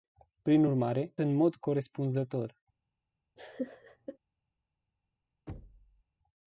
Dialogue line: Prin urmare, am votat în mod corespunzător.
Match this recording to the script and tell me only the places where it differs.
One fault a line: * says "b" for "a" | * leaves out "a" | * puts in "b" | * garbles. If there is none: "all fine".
* leaves out "am votat"